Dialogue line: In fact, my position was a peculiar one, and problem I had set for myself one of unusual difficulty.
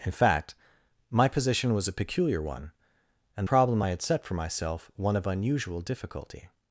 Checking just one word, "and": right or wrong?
right